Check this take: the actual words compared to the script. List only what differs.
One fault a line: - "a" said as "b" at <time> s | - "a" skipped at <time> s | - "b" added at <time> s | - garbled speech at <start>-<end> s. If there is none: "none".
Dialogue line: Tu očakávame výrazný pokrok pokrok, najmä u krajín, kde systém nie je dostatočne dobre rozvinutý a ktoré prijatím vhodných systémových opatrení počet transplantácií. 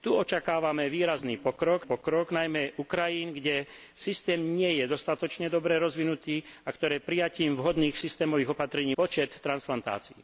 none